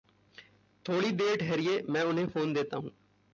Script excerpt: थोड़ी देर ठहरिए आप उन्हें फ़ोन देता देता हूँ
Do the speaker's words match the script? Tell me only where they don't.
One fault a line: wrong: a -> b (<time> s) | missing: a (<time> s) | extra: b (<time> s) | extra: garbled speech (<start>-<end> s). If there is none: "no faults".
wrong: आप -> मैं (1.8 s)
missing: देता (2.8 s)